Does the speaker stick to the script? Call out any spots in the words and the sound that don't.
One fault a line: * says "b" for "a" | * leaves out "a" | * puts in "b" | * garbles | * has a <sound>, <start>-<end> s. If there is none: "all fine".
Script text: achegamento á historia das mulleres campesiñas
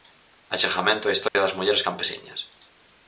* has a dropout, 1.3-1.4 s